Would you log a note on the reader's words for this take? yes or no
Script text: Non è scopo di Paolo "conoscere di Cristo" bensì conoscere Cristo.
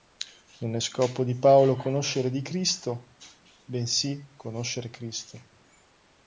no